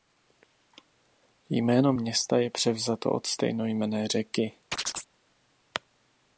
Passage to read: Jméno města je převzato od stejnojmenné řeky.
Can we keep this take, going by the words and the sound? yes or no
no